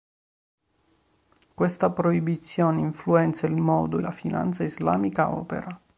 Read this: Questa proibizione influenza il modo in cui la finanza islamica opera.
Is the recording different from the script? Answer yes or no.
yes